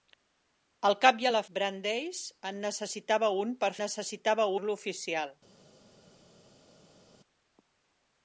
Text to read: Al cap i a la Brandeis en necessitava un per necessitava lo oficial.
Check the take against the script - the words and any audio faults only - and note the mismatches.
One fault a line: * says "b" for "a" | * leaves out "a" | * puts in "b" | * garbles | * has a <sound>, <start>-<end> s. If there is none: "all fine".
all fine